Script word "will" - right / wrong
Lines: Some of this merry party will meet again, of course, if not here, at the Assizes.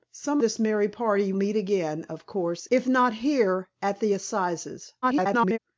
wrong